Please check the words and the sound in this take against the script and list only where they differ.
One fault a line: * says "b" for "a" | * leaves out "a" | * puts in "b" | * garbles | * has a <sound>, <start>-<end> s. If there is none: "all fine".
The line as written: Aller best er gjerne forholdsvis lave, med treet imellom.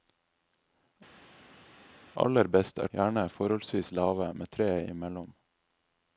all fine